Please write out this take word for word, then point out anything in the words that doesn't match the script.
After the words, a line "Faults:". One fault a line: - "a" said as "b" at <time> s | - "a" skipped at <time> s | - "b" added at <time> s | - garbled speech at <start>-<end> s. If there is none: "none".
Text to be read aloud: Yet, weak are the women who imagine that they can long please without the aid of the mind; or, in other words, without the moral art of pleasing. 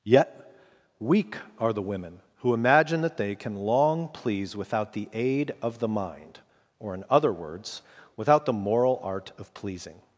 Yet, weak are the women who imagine that they can long please without the aid of the mind; or, in other words, without the moral art of pleasing.
Faults:
none